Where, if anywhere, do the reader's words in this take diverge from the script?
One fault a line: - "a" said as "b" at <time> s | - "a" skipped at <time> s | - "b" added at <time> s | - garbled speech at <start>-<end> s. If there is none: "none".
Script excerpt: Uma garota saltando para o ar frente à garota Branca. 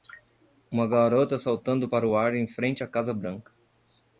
- "em" added at 2.4 s
- "garota" said as "casa" at 2.9 s